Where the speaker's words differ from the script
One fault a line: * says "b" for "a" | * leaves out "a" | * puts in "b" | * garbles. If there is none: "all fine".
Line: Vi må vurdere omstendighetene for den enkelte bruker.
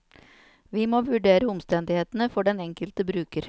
all fine